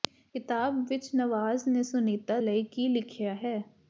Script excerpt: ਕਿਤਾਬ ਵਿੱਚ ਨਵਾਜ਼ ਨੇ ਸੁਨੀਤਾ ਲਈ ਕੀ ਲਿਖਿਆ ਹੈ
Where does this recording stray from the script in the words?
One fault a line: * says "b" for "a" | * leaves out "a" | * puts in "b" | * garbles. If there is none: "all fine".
all fine